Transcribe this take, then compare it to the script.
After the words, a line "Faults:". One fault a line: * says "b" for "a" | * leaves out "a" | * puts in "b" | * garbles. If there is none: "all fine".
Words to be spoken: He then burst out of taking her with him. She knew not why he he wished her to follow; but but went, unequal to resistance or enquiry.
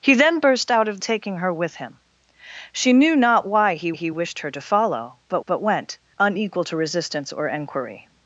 He then burst out of taking her with him. She knew not why he he wished her to follow; but but went, unequal to resistance or enquiry.
Faults:
all fine